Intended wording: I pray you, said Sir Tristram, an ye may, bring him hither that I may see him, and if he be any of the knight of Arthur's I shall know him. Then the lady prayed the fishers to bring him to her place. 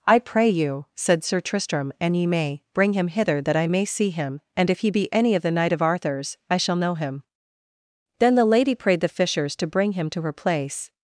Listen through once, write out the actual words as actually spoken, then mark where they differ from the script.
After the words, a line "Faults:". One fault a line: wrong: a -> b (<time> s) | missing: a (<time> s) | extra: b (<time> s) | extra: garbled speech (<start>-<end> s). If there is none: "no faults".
I pray you, said Sir Tristram, an ye may, bring him hither that I may see him, and if he be any of the knight of Arthur's I shall know him. Then the lady prayed the fishers to bring him to her place.
Faults:
no faults